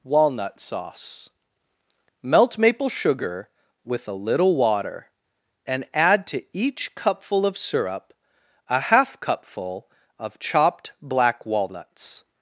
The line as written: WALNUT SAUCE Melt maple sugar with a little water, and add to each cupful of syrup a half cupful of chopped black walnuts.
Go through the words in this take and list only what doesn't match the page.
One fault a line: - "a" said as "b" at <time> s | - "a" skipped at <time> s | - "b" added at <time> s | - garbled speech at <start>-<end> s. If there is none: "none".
none